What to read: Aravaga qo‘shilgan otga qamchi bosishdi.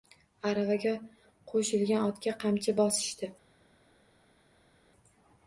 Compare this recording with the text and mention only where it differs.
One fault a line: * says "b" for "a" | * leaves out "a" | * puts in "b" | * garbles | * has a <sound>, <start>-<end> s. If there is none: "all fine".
all fine